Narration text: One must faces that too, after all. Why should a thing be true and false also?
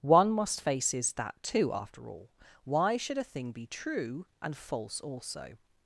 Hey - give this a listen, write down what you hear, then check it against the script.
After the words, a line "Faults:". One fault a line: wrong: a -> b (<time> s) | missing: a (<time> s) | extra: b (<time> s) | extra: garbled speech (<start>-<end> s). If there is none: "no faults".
One must faces that too, after all. Why should a thing be true and false also?
Faults:
no faults